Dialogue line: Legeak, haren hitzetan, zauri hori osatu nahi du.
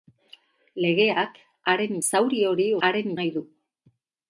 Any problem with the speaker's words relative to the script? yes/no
yes